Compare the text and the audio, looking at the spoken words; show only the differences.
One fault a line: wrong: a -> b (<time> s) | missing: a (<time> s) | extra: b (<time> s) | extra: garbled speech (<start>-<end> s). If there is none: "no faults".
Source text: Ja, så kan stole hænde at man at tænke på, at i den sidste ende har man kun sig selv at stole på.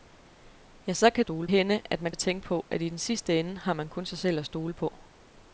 no faults